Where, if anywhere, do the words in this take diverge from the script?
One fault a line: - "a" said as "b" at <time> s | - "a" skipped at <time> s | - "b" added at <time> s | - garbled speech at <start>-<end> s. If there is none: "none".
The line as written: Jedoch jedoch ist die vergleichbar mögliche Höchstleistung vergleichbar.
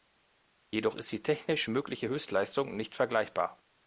- "jedoch" skipped at 0.9 s
- "vergleichbar" said as "technisch" at 1.2 s
- "nicht" added at 2.8 s